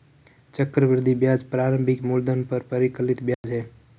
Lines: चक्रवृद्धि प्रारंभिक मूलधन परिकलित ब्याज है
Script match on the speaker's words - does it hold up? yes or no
no